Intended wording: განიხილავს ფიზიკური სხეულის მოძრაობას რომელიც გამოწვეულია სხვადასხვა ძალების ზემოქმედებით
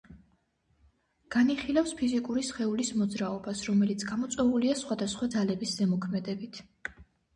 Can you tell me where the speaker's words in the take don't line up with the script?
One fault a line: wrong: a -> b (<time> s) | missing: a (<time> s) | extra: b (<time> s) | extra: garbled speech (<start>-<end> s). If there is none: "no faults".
no faults